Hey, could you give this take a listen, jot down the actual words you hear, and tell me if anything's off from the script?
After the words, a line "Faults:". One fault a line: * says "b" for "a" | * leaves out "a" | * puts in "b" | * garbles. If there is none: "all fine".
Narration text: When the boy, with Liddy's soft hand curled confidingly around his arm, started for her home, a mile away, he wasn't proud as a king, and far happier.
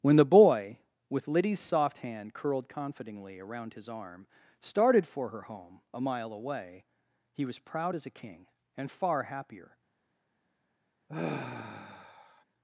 When the boy, with Liddy's soft hand curled confidingly around his arm, started for her home, a mile away, he was proud as a king, and far happier.
Faults:
* says "was" for "wasn't"